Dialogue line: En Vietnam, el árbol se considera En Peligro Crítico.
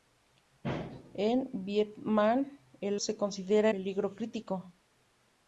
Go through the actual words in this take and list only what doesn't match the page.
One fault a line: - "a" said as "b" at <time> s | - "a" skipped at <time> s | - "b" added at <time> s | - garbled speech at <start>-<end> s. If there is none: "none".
- "árbol" skipped at 3.0 s
- "En" skipped at 3.7 s